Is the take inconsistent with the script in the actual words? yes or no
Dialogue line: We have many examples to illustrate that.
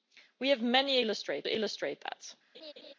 yes